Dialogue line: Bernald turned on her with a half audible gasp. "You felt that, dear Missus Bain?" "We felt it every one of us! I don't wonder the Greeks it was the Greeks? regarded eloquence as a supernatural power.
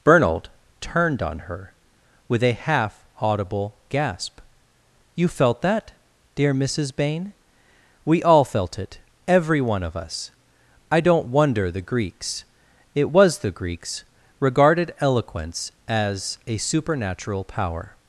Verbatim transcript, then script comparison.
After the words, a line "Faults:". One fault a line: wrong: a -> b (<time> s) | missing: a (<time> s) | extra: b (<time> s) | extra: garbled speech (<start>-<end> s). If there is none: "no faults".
Bernald turned on her with a half audible gasp. "You felt that, dear Missus Bain?" "We all felt it every one of us! I don't wonder the Greeks it was the Greeks? regarded eloquence as a supernatural power.
Faults:
extra: all (8.2 s)